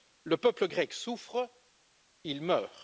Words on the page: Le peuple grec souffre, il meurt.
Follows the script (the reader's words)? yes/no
yes